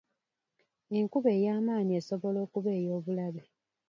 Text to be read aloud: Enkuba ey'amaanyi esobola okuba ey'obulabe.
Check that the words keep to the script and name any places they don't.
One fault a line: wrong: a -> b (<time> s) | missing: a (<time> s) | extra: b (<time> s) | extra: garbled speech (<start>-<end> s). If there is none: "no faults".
no faults